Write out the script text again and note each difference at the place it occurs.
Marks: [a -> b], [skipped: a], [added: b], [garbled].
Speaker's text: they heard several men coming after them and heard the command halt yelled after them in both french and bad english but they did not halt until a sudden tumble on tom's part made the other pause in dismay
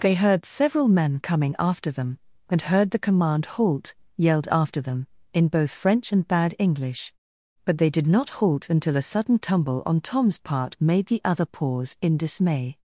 they heard several men coming after them and heard the command halt yelled after them in both french and bad english but they did not halt until a sudden tumble on tom's part made the other pause in dismay